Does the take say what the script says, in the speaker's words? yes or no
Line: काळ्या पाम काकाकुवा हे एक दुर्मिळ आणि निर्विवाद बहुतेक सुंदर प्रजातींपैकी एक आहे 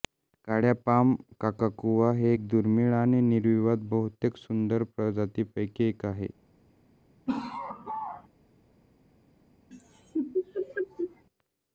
yes